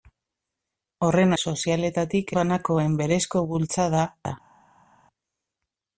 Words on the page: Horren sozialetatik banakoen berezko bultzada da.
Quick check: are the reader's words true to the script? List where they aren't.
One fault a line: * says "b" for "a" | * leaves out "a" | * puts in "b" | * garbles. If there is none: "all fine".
all fine